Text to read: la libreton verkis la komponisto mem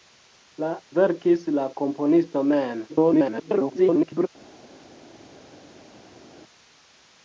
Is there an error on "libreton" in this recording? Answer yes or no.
yes